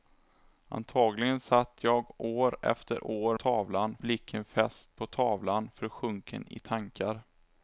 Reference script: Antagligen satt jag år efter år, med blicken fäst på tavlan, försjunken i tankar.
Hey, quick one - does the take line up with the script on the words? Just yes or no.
no